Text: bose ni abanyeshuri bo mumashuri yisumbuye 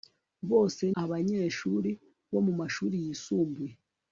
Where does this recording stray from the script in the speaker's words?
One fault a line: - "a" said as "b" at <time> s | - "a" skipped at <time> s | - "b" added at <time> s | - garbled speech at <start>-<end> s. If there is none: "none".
- "ni" skipped at 0.8 s